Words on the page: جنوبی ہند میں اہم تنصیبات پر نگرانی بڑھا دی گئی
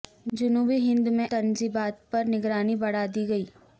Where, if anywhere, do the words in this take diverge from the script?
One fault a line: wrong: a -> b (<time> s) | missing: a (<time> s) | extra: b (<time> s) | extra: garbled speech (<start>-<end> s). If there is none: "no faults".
missing: اہم (1.3 s)